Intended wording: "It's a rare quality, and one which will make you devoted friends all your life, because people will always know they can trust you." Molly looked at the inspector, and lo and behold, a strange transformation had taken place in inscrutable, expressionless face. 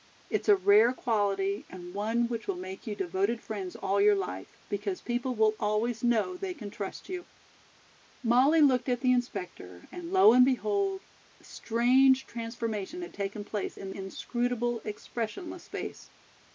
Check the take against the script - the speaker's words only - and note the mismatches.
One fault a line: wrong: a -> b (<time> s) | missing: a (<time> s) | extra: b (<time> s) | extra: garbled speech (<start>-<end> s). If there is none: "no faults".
no faults